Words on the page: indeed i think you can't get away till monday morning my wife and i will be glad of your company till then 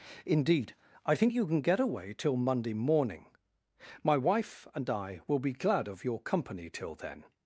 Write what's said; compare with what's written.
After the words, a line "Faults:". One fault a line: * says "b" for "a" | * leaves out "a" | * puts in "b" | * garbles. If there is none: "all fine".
indeed i think you can get away till monday morning my wife and i will be glad of your company till then
Faults:
* says "can" for "can't"